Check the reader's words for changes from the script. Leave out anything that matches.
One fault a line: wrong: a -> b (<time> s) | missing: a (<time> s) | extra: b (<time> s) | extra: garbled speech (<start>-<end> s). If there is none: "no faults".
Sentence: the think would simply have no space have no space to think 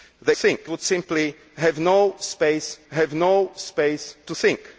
no faults